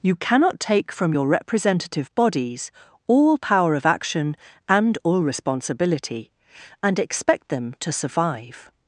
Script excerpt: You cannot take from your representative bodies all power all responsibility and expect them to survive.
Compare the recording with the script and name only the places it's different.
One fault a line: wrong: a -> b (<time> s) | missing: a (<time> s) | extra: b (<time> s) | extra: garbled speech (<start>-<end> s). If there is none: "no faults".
extra: of action and (3.7 s)